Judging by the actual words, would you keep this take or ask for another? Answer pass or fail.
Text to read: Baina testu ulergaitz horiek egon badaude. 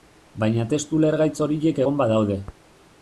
pass